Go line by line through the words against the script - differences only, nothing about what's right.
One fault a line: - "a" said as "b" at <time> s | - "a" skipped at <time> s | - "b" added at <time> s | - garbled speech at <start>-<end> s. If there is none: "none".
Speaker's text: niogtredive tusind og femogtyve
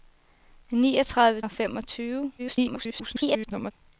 - "tusind" skipped at 1.4 s
- garbled speech at 2.4-3.7 s